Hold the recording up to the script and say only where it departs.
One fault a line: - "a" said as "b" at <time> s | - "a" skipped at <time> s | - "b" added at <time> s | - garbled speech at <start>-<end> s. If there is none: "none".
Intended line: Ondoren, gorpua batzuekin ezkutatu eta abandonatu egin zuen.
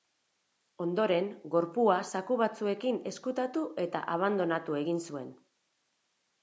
- "zaku" added at 2.1 s